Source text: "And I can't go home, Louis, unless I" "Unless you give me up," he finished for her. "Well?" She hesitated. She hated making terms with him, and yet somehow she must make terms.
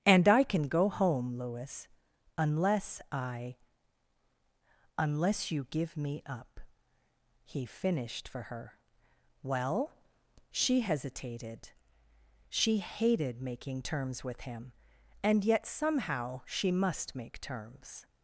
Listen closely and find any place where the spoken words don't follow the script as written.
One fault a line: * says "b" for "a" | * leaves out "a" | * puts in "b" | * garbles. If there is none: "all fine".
* says "can" for "can't"